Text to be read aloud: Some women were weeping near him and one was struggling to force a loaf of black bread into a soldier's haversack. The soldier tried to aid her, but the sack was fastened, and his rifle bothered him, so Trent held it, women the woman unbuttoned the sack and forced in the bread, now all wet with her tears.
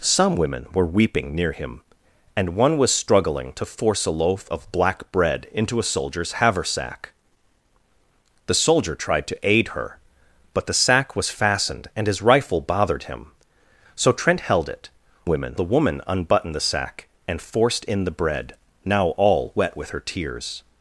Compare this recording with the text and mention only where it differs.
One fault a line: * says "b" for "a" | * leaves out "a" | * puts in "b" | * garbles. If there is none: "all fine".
all fine